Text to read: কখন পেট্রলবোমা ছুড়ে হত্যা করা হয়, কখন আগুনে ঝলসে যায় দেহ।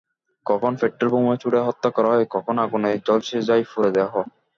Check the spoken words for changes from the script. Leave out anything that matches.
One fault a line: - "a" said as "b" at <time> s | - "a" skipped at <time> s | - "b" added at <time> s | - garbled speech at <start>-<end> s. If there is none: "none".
- "পুরো" added at 3.7 s